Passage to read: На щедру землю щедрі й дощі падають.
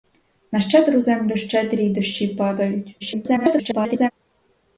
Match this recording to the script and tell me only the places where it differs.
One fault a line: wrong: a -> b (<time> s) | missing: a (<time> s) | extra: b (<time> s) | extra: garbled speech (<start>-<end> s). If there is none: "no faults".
extra: garbled speech (3.0-4.1 s)